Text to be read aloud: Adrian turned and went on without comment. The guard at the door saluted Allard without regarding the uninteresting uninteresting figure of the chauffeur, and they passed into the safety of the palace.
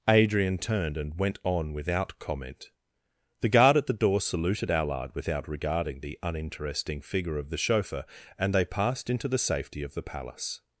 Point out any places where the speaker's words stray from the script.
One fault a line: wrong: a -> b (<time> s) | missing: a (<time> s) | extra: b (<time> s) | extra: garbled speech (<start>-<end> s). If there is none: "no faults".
missing: uninteresting (7.0 s)